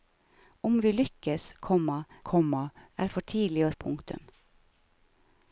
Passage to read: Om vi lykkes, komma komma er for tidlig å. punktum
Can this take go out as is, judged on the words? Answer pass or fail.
pass